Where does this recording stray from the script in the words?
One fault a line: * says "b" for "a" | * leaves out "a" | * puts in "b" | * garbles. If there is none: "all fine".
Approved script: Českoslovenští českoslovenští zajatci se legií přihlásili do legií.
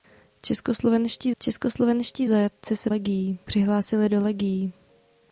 all fine